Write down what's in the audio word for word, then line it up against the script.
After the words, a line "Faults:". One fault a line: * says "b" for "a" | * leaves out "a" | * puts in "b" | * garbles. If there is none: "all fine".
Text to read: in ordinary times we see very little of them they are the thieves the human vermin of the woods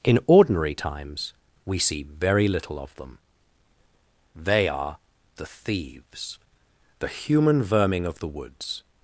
in ordinary times we see very little of them they are the thieves the human vermin of the woods
Faults:
all fine